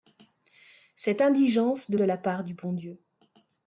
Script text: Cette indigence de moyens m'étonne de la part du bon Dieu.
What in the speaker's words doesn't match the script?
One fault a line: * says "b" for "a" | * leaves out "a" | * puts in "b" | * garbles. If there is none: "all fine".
* leaves out "moyens m'étonne"